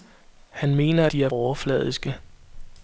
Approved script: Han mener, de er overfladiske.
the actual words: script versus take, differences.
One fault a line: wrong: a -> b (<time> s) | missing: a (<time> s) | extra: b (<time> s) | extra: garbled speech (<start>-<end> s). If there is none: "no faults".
no faults